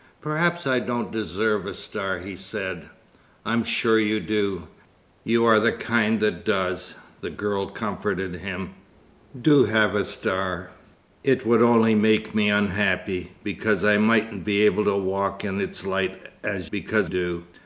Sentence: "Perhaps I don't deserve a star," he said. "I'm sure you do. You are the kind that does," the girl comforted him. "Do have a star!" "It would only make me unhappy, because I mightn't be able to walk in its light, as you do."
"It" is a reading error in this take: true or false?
false